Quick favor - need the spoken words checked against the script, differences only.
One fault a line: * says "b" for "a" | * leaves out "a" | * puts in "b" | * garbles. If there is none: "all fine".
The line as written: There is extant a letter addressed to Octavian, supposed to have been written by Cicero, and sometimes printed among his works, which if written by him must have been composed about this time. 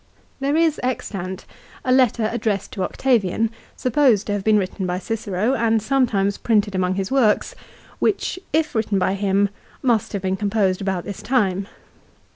all fine